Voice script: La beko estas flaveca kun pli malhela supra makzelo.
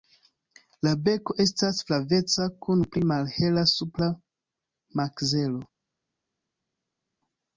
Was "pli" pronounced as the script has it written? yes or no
yes